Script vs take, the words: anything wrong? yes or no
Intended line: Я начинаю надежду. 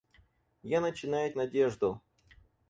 no